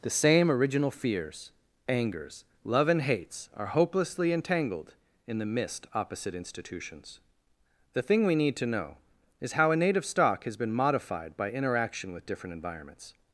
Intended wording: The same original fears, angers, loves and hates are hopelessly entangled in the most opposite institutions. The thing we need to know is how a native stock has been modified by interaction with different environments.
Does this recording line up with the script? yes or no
no